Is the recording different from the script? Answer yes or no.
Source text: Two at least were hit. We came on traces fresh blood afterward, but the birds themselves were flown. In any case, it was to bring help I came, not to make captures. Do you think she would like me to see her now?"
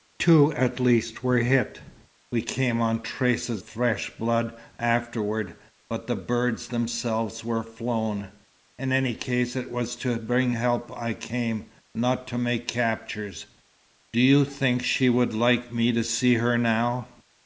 no